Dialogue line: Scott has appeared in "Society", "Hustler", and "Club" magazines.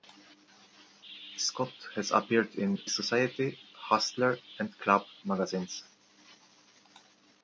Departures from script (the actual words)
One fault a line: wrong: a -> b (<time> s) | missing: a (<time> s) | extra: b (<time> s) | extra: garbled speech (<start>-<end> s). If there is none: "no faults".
no faults